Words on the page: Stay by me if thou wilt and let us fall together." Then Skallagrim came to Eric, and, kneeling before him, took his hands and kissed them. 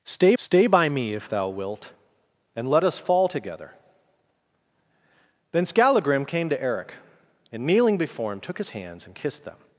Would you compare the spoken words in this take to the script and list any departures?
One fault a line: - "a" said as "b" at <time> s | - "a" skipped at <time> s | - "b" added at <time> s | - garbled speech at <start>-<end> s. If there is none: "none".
- "stay" added at 0.3 s